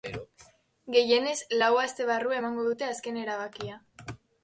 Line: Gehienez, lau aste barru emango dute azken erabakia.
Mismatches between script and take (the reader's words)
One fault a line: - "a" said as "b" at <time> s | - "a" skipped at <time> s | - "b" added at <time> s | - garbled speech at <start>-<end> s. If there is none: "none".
none